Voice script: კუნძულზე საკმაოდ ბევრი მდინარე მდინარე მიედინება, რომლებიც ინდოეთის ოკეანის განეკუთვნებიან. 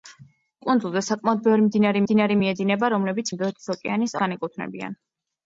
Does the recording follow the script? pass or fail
pass